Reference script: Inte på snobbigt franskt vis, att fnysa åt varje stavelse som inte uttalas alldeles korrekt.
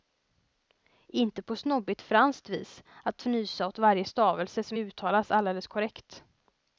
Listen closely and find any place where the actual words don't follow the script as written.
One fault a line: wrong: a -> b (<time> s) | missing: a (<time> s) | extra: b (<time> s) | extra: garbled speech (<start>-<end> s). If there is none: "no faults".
missing: inte (4.8 s)